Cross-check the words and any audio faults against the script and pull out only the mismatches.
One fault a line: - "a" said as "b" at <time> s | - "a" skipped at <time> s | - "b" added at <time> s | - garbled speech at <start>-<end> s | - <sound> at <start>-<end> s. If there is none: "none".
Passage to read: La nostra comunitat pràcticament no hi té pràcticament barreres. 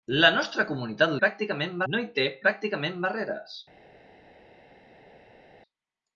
none